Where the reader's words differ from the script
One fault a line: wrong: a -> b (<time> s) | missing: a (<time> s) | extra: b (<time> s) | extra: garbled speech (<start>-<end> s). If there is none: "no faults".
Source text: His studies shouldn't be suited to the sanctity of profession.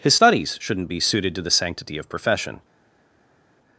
no faults